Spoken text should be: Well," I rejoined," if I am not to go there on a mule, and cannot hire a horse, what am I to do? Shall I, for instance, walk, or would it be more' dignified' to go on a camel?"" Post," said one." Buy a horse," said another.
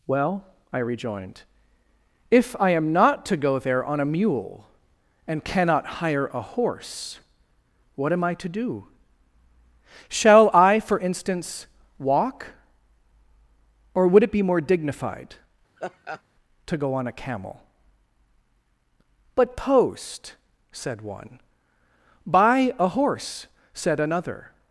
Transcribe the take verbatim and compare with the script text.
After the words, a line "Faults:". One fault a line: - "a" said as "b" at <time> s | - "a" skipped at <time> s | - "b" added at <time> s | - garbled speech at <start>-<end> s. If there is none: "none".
Well," I rejoined," if I am not to go there on a mule, and cannot hire a horse, what am I to do? Shall I, for instance, walk, or would it be more' dignified' to go on a camel?"" but Post," said one." Buy a horse," said another.
Faults:
- "but" added at 19.4 s